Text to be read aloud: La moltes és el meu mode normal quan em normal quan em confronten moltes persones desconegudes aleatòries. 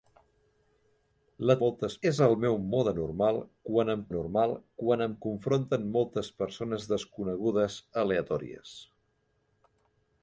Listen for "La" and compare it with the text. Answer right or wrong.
right